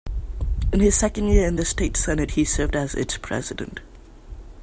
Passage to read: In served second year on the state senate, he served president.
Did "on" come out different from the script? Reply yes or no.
yes